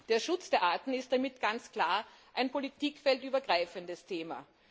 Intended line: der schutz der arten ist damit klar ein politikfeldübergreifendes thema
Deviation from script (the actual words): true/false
true